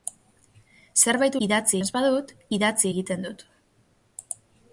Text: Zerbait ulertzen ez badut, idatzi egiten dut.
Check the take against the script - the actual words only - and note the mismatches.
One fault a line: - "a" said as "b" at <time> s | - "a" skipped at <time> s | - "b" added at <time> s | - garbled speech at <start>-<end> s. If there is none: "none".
- "ulertzen" said as "idatzi" at 1.5 s